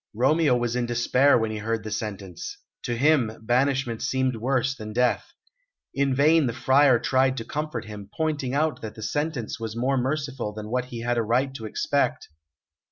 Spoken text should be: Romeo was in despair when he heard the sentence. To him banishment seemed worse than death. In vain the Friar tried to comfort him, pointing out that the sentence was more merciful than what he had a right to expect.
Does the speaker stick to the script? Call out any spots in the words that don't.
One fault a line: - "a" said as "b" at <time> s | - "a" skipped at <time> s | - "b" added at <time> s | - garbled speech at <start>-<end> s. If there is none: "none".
none